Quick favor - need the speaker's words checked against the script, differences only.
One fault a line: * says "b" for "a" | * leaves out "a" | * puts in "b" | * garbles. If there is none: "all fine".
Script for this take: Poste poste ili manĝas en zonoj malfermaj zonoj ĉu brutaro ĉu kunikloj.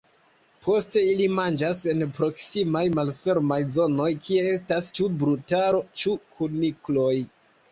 * leaves out "poste"
* says "proksimaj" for "zonoj"
* puts in "kie estas"